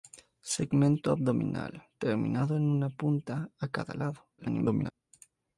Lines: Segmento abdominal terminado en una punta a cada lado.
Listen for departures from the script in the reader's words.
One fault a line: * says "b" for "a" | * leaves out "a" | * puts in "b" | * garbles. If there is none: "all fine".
* garbles